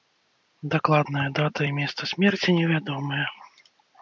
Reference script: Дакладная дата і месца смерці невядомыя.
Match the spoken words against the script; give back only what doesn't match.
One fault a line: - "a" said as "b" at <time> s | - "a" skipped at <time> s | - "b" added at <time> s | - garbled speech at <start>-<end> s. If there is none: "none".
none